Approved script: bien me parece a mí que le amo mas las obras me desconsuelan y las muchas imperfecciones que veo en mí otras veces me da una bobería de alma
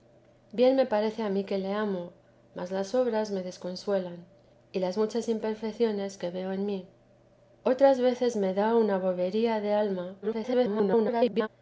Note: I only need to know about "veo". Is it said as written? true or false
true